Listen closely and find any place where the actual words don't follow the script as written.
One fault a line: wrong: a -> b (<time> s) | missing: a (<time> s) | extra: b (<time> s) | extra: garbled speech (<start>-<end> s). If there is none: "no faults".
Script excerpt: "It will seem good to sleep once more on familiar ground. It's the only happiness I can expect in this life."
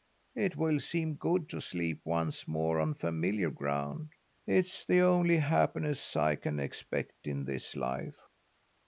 no faults